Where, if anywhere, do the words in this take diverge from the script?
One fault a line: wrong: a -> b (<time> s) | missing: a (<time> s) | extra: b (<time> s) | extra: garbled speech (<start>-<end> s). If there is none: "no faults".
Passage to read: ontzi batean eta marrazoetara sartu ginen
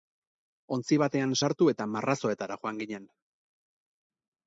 extra: sartu (1.4 s)
wrong: sartu -> joan (2.6 s)